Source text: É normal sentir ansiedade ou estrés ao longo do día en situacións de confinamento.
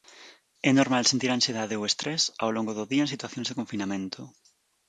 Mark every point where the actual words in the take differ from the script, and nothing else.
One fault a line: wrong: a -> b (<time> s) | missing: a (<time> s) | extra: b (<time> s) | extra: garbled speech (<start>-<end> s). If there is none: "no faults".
no faults